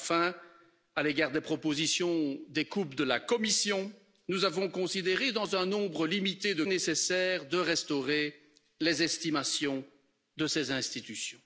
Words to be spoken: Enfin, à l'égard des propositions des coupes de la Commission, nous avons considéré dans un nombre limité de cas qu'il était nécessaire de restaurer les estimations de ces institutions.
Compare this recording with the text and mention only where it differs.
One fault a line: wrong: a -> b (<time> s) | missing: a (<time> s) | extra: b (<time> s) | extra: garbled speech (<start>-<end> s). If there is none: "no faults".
missing: cas qu'il était (6.6 s)